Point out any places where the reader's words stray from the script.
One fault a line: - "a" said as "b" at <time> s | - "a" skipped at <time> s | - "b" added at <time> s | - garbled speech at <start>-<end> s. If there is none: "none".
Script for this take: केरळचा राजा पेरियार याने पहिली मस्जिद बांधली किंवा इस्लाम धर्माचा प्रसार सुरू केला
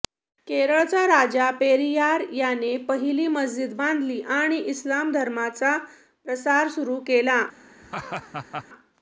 - "किंवा" said as "आणि" at 4.4 s